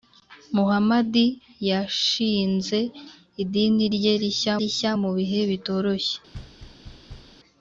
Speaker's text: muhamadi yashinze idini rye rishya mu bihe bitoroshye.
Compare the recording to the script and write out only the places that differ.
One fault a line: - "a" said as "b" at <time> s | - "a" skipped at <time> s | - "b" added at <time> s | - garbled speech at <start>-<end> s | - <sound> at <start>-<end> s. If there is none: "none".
- "rishya" added at 4.6 s
- thud at 6.3-7.4 s